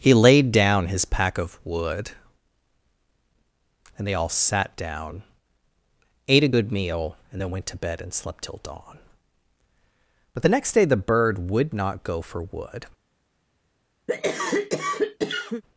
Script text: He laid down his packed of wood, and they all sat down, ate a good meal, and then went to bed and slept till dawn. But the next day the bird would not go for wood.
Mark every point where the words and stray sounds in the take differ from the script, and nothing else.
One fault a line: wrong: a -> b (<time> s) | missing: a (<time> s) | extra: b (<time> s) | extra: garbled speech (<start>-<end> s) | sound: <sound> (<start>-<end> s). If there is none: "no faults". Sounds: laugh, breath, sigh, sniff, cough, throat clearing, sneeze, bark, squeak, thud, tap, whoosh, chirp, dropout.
wrong: packed -> pack (1.1 s)
sound: cough (14.1-15.6 s)